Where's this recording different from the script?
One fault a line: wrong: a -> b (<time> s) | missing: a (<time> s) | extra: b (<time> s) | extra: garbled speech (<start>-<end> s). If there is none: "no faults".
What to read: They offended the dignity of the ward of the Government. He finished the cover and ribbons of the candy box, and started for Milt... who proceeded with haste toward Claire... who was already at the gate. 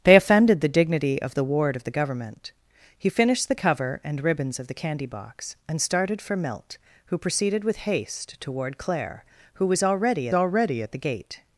extra: already (10.3 s)